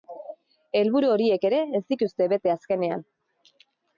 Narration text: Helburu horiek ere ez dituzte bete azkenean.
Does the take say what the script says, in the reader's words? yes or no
yes